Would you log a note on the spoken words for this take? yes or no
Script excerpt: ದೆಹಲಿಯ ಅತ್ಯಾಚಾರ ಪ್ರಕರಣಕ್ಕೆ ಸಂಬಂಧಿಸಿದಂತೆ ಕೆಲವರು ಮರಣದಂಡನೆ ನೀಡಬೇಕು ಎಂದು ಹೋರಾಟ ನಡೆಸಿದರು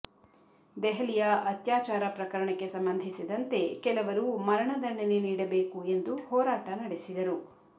no